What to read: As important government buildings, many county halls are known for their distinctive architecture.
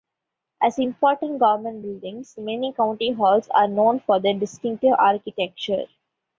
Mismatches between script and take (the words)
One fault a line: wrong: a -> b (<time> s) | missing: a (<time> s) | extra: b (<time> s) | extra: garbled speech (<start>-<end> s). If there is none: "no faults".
no faults